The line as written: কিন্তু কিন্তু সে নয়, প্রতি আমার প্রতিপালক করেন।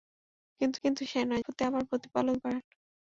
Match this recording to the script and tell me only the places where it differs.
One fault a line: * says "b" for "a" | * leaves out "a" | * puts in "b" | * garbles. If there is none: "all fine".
all fine